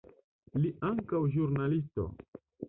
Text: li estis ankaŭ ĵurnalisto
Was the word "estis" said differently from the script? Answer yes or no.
yes